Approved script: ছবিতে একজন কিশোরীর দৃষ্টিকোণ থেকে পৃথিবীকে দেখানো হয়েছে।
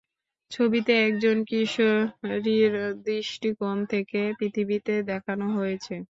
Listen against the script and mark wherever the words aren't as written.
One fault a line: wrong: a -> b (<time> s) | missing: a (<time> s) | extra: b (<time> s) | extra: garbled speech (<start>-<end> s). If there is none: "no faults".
no faults